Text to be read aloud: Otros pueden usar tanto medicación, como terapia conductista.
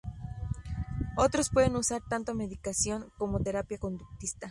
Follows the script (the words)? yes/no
yes